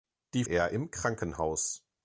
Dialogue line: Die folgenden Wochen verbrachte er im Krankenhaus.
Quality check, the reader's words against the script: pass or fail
fail